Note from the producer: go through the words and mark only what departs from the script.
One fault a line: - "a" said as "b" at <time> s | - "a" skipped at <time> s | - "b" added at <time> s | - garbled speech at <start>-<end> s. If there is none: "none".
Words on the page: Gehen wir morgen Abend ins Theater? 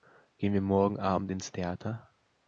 none